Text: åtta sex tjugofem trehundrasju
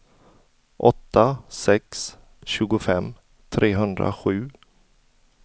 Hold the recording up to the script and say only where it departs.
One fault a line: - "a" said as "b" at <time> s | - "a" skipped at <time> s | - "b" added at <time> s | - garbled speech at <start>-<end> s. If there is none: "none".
none